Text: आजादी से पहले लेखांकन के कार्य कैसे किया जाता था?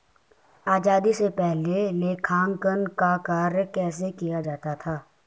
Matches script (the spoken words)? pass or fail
fail